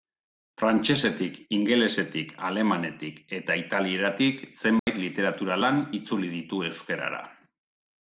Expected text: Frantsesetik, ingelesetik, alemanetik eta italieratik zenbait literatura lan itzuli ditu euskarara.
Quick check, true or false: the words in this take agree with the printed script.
true